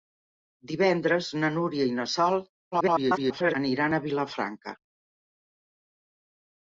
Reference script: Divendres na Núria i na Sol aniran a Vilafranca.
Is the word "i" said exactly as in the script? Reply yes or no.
yes